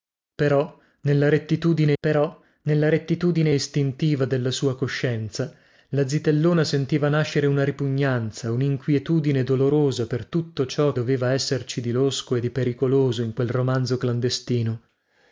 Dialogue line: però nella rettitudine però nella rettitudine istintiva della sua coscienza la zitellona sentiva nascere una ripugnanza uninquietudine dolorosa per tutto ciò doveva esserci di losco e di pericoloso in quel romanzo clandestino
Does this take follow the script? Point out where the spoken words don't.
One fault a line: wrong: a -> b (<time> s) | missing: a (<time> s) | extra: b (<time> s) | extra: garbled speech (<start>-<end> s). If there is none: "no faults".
no faults